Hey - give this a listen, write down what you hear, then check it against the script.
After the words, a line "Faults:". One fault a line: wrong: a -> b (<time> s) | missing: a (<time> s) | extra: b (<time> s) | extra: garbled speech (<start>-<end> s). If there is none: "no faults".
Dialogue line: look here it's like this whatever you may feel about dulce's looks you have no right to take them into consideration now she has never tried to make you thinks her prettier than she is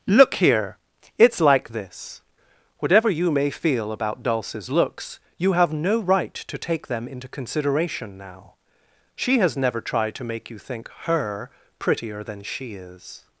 look here it's like this whatever you may feel about dulce's looks you have no right to take them into consideration now she has never tried to make you think her prettier than she is
Faults:
wrong: thinks -> think (10.6 s)